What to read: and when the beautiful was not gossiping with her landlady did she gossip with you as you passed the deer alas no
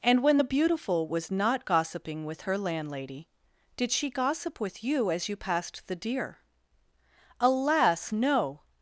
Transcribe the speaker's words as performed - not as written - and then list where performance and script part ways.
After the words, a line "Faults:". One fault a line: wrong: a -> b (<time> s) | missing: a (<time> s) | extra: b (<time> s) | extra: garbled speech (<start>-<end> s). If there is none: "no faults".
and when the beautiful was not gossiping with her landlady did she gossip with you as you passed the deer alas no
Faults:
no faults